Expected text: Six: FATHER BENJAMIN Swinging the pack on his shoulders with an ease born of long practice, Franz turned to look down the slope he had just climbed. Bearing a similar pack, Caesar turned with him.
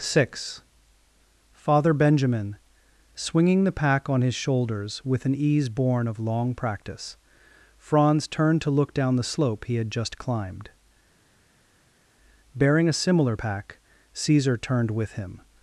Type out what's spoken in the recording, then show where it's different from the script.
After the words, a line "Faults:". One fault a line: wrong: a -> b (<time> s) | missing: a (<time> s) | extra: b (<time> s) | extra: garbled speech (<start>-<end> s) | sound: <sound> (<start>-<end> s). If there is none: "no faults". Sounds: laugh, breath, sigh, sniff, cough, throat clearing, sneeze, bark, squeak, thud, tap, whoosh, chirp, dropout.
Six: FATHER BENJAMIN Swinging the pack on his shoulders with an ease born of long practice, Franz turned to look down the slope he had just climbed. Bearing a similar pack, Caesar turned with him.
Faults:
no faults